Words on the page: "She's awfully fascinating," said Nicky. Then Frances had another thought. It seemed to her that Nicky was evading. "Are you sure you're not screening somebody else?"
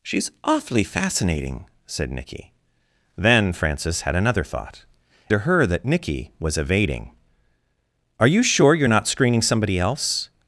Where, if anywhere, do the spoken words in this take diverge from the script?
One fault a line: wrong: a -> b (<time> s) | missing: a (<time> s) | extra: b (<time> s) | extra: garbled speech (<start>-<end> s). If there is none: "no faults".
missing: It seemed (4.8 s)